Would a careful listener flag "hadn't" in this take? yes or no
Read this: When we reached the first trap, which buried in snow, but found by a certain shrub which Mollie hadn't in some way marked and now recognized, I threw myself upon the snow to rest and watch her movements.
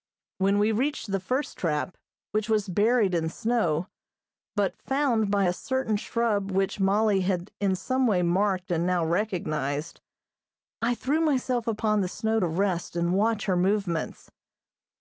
yes